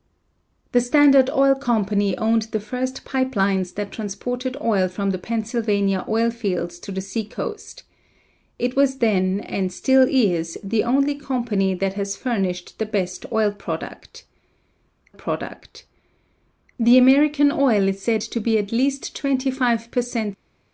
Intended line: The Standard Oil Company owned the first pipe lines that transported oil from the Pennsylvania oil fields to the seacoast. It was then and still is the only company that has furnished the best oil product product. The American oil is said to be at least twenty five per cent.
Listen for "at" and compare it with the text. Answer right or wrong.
right